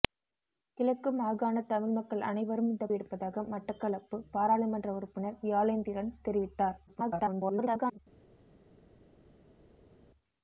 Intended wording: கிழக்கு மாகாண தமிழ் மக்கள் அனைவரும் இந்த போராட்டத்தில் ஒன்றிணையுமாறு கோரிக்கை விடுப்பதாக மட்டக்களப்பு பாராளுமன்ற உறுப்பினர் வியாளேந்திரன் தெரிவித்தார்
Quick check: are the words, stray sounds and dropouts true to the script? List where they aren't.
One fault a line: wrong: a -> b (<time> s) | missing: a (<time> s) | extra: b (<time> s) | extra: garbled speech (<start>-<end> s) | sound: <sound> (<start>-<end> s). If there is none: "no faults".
missing: போராட்டத்தில் ஒன்றிணையுமாறு கோரிக்கை (2.9 s)
extra: garbled speech (6.9-8.0 s)